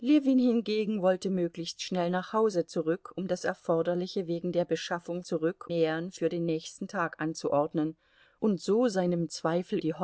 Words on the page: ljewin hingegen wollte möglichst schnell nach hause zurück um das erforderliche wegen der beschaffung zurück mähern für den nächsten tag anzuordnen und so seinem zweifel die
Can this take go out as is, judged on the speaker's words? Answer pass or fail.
pass